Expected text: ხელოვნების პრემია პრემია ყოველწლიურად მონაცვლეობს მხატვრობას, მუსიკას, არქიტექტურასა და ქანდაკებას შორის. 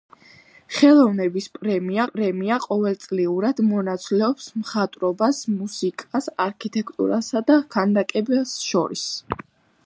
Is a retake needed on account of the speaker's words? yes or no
no